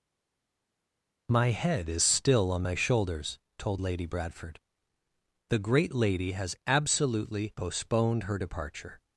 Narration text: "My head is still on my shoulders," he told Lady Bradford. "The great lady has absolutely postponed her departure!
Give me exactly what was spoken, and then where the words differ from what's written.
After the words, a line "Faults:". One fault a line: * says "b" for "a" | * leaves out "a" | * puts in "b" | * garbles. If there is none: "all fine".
"My head is still on my shoulders," told Lady Bradford. "The great lady has absolutely postponed her departure!
Faults:
* leaves out "he"